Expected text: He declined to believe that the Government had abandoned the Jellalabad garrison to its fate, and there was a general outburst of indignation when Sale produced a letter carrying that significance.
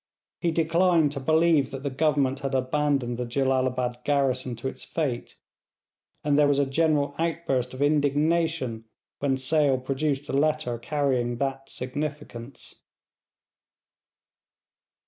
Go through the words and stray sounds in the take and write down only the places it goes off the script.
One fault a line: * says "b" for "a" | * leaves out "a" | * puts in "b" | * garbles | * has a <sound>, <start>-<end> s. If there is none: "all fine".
all fine